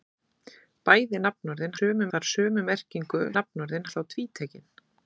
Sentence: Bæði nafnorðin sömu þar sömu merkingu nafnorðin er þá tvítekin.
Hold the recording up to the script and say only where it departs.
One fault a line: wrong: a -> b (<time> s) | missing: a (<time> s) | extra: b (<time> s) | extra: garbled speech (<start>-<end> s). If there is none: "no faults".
no faults